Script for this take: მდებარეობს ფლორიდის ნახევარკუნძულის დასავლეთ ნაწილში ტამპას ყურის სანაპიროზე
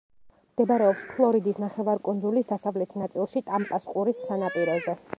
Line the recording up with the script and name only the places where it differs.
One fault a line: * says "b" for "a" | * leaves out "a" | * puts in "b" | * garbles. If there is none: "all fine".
all fine